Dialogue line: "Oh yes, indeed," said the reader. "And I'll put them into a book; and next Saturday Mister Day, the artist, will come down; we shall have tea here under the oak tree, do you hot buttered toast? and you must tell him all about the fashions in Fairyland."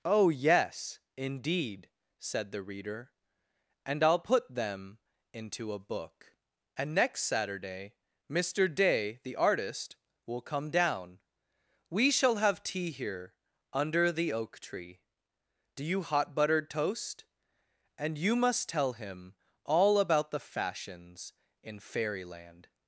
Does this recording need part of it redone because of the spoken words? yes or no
no